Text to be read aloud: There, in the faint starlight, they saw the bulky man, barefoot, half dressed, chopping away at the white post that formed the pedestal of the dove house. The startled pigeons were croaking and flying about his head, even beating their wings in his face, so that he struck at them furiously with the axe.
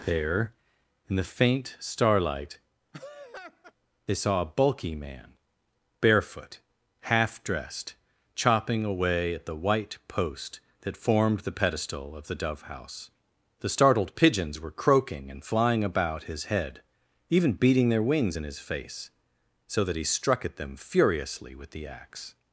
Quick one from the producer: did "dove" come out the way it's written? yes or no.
yes